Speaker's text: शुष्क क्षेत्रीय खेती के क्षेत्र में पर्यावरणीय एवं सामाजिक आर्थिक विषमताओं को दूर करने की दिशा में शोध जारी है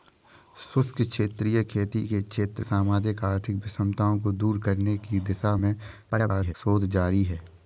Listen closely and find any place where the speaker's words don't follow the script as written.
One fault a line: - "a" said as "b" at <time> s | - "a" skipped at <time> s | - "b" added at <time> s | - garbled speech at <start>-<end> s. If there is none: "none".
- "में पर्यावरणीय एवं" skipped at 2.6 s
- garbled speech at 6.1-6.5 s